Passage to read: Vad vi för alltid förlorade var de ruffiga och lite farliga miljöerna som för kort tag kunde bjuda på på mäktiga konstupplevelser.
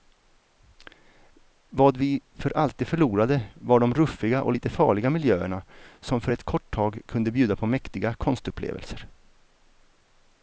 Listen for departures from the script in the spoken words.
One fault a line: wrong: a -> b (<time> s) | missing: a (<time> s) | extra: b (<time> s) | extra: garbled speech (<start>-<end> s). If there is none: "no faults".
extra: ett (6.3 s)
missing: på (7.7 s)